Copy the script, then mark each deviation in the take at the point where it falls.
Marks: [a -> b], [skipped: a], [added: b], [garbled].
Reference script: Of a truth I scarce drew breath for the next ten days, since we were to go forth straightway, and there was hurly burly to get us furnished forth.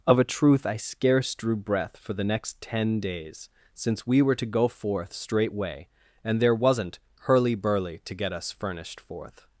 Of a truth I scarce drew breath for the next ten days, since we were to go forth straightway, and there [was -> wasn't] hurly burly to get us furnished forth.